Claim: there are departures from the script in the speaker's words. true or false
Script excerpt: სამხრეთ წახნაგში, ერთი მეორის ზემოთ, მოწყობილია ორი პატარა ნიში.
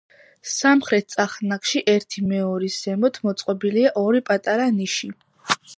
false